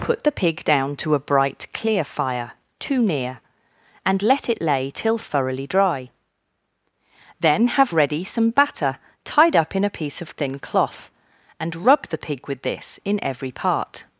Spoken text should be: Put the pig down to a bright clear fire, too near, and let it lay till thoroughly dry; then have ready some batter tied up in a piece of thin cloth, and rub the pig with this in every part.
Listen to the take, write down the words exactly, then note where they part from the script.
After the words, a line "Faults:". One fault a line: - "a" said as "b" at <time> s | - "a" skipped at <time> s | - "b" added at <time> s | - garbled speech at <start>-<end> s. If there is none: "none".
Put the pig down to a bright clear fire, too near, and let it lay till thoroughly dry; then have ready some batter tied up in a piece of thin cloth, and rub the pig with this in every part.
Faults:
none